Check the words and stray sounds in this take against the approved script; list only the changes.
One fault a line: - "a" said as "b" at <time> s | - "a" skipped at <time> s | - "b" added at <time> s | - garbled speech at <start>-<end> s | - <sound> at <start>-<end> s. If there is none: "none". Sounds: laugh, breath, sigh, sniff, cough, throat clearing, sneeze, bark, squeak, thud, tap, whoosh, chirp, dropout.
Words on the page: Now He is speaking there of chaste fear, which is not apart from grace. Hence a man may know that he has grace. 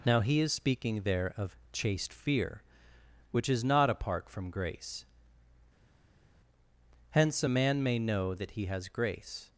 none